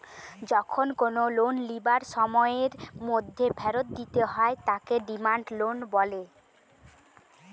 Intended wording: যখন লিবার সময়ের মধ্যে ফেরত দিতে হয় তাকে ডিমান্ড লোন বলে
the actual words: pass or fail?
fail